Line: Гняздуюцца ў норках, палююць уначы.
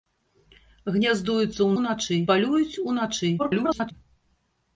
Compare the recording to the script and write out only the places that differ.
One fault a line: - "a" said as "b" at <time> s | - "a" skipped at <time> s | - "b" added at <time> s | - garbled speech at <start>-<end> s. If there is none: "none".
- "норках" said as "уначы" at 1.8 s
- garbled speech at 3.4-3.9 s